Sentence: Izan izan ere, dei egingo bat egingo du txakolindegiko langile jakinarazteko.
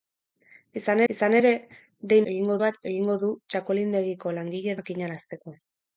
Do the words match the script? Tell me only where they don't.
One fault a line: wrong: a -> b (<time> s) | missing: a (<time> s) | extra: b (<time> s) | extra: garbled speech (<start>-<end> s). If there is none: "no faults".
no faults